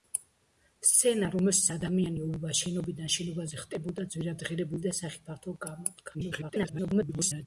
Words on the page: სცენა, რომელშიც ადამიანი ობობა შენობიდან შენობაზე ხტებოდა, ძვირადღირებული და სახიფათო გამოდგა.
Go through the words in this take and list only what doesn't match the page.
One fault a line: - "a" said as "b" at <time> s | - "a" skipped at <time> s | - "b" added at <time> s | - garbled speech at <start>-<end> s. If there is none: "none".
- garbled speech at 6.1-7.5 s